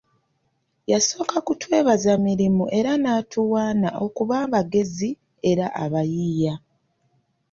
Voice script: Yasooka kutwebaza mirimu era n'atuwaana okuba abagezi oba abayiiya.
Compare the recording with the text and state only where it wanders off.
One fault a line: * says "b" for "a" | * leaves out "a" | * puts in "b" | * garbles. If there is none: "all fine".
* says "era" for "oba"